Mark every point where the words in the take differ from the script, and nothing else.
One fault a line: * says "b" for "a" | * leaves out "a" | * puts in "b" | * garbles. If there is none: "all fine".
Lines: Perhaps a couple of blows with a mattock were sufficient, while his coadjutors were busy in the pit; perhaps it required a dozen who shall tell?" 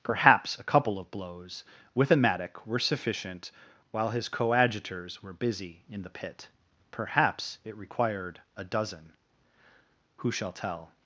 all fine